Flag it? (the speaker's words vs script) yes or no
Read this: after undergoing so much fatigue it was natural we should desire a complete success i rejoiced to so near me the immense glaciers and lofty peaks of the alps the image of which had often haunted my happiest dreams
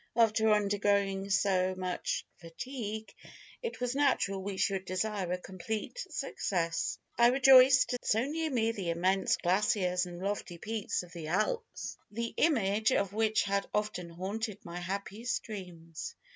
no